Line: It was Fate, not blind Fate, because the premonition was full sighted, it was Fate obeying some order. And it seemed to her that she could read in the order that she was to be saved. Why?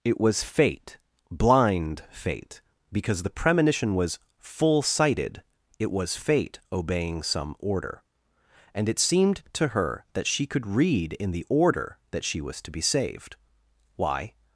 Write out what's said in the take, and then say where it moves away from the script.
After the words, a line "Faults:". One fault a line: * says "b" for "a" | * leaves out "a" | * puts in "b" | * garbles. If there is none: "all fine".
It was Fate, blind Fate, because the premonition was full sighted, it was Fate obeying some order. And it seemed to her that she could read in the order that she was to be saved. Why?
Faults:
* leaves out "not"